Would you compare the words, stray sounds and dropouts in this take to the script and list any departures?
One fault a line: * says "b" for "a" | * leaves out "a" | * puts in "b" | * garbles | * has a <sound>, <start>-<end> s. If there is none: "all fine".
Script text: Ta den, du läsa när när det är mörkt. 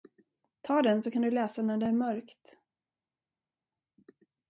* puts in "så kan"
* leaves out "när"